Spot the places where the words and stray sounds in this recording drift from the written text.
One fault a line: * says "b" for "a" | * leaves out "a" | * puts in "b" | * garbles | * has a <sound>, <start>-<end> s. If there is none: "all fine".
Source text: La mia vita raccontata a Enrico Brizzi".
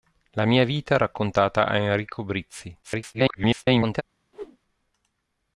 * garbles
* has a whoosh, 4.3-4.6 s